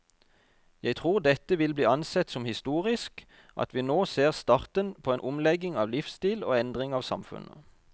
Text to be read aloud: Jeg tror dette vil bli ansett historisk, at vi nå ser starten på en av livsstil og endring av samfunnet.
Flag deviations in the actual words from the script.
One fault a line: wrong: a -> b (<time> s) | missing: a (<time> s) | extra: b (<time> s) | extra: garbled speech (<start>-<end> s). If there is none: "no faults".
extra: som (2.3 s)
extra: omlegging (5.3 s)